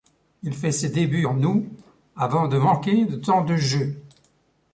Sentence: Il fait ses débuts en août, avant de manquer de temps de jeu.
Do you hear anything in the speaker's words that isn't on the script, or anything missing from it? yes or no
no